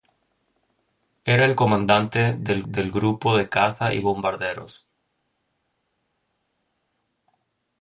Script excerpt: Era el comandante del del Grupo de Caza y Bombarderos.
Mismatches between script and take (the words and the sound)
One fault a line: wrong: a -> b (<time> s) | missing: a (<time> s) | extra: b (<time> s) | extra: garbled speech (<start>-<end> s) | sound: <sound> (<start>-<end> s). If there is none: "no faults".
no faults